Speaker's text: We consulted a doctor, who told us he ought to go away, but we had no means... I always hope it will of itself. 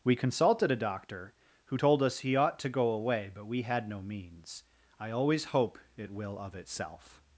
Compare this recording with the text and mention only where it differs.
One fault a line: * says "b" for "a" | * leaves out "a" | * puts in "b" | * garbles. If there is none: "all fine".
all fine